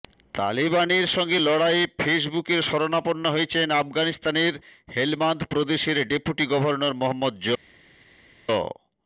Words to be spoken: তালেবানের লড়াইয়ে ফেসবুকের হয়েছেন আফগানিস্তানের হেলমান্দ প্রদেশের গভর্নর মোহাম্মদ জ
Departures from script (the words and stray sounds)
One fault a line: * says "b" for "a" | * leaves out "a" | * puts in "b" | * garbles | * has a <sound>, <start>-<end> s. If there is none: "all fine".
* puts in "সঙ্গে"
* puts in "শরণাপন্ন"
* puts in "ডেপুটি"